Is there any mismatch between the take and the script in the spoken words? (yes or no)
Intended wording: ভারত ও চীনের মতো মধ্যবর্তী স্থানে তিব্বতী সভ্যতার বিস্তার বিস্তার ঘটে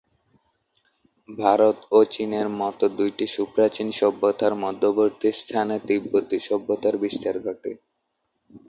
yes